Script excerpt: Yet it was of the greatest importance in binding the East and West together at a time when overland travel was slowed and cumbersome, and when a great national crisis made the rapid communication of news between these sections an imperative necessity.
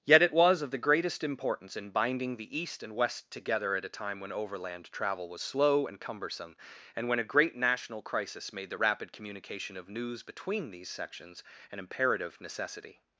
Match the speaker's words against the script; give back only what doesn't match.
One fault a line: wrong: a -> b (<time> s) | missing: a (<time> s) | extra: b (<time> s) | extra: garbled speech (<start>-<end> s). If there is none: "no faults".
wrong: slowed -> slow (5.4 s)